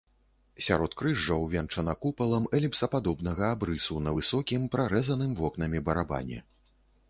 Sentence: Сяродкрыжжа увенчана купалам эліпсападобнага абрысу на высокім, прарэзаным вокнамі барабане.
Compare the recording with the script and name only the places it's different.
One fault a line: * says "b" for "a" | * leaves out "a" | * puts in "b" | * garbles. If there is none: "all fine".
all fine